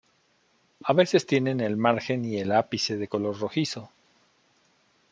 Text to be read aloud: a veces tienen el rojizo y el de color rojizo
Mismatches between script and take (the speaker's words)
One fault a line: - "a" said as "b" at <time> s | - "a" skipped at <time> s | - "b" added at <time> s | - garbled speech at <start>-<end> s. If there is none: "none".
- "rojizo" said as "margen" at 1.8 s
- "ápice" added at 2.5 s